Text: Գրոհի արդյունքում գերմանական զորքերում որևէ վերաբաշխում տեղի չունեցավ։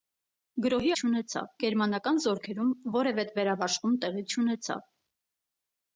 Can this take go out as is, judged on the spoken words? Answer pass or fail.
fail